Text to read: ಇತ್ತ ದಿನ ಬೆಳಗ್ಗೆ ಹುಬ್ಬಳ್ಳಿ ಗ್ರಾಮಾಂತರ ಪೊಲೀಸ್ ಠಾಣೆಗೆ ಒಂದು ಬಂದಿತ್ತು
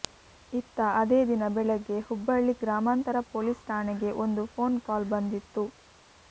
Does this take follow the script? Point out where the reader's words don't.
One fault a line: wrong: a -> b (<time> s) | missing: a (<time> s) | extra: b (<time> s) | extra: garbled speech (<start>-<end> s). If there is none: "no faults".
extra: ಅದೇ (1.0 s)
extra: ಫೋನ್ ಕಾಲ್ (4.5 s)